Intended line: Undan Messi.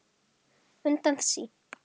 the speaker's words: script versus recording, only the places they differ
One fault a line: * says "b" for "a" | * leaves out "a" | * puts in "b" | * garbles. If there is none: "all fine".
all fine